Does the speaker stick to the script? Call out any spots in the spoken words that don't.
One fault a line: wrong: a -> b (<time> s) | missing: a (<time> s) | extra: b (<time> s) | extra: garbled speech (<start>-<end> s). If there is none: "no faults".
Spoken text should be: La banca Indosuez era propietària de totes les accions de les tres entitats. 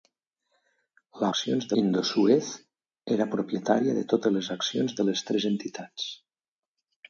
wrong: banca -> accions (1.3 s)